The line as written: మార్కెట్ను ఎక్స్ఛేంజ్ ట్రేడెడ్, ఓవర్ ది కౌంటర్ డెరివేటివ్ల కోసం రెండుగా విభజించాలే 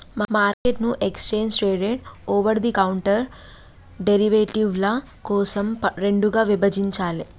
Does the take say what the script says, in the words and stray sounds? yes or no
no